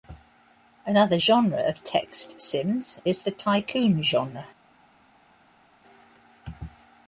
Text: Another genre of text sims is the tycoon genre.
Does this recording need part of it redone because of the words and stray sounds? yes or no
no